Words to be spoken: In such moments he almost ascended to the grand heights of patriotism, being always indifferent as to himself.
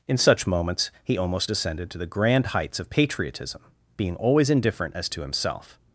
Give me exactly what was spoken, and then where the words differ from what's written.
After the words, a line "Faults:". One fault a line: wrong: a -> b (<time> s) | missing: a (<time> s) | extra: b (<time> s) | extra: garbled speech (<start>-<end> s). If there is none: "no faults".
In such moments he almost ascended to the grand heights of patriotism, being always indifferent as to himself.
Faults:
no faults